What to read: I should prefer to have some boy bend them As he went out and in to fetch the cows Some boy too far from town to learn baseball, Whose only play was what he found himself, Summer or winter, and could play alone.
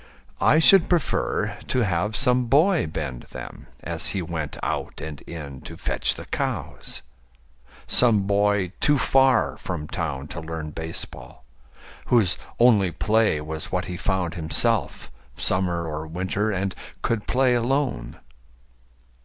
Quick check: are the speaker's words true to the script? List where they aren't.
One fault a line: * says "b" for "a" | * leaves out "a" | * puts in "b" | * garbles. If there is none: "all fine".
all fine